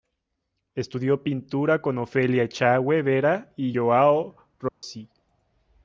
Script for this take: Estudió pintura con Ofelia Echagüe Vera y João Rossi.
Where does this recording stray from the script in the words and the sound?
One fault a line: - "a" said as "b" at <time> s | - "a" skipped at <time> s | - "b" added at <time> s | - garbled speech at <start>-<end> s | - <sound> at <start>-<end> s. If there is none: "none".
- dropout at 4.7-4.8 s